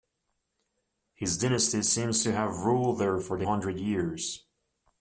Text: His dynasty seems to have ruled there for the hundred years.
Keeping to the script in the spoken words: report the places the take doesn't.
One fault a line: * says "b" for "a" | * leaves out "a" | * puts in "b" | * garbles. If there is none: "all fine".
all fine